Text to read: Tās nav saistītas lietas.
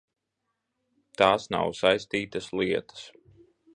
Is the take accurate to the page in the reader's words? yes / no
yes